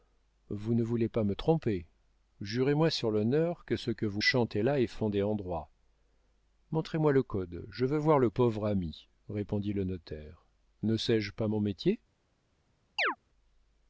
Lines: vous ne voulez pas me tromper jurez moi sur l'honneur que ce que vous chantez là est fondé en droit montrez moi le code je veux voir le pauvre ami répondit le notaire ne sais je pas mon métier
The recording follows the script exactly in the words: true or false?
true